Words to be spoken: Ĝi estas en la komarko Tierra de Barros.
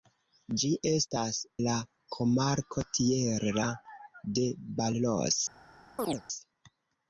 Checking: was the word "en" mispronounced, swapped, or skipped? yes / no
yes